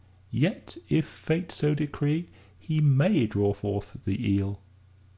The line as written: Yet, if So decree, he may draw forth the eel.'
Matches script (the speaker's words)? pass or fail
fail